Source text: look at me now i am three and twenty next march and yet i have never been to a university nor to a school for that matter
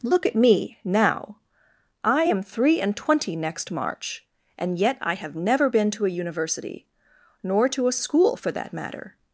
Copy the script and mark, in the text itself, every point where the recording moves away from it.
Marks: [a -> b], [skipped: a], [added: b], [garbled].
look at me now i am three and twenty next march and yet i have never been to a university nor to a school for that matter